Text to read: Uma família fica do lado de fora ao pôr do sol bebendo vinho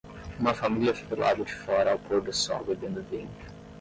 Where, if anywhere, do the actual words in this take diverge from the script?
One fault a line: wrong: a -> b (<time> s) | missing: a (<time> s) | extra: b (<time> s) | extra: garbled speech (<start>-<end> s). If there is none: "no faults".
missing: do (1.1 s)